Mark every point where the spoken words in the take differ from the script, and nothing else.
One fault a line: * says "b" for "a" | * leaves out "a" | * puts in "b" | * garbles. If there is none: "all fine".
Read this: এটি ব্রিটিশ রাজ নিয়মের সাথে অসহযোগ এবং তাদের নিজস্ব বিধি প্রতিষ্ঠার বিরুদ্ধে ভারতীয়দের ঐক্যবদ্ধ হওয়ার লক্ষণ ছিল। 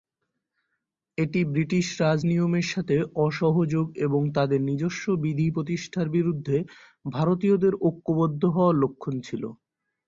all fine